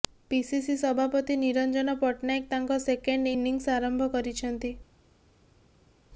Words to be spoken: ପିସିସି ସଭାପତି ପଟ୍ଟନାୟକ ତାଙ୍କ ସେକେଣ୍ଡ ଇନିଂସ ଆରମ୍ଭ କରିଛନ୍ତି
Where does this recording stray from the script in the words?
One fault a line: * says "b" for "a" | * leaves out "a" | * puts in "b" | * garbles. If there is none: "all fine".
* puts in "ନିରଞ୍ଜନ"